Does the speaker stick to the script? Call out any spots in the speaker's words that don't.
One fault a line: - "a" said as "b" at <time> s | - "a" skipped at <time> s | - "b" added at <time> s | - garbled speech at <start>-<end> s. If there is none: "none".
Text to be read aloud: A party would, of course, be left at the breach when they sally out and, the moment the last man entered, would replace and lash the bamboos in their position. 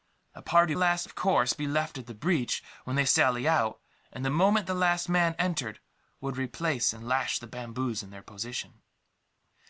- "would" said as "last" at 0.7 s